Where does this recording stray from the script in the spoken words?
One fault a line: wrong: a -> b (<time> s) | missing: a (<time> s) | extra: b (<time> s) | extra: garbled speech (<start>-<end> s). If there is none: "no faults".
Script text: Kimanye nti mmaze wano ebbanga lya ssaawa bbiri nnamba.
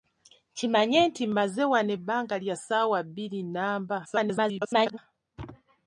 extra: garbled speech (4.0-5.0 s)